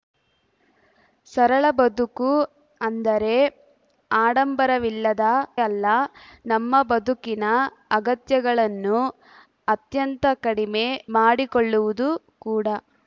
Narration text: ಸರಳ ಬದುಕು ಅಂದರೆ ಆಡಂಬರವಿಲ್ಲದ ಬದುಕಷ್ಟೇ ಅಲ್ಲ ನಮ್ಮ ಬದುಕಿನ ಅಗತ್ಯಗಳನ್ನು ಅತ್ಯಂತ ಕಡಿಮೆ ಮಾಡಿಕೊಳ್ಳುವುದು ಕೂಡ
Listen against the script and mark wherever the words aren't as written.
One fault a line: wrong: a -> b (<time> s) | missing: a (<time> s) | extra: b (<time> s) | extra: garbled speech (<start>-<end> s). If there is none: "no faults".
missing: ಬದುಕಷ್ಟೇ (5.2 s)